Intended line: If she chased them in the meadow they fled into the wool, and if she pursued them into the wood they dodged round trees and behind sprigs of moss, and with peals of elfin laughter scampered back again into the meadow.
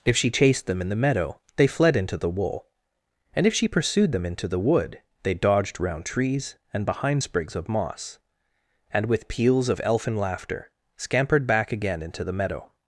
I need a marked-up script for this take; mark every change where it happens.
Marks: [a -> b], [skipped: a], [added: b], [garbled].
If she chased them in the meadow they fled into the wool, and if she pursued them into the wood they dodged round trees and behind sprigs of moss, and with peals of elfin laughter scampered back again into the meadow.